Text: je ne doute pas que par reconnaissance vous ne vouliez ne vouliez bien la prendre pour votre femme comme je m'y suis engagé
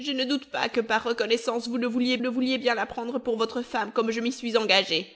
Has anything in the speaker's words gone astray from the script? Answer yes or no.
no